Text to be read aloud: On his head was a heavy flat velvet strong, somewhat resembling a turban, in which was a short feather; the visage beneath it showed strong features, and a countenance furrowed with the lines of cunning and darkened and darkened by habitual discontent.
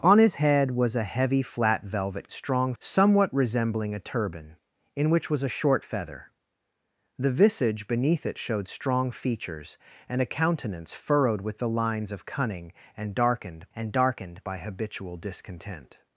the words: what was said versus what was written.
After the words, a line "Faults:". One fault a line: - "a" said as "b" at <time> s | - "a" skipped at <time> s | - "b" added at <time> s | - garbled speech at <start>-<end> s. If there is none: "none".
On his head was a heavy flat velvet strong, somewhat resembling a turban, in which was a short feather; the visage beneath it showed strong features, and a countenance furrowed with the lines of cunning and darkened and darkened by habitual discontent.
Faults:
none